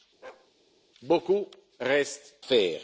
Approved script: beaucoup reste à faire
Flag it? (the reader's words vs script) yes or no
yes